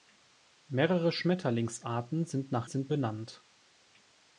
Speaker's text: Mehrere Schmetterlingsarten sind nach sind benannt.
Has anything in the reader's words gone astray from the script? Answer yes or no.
no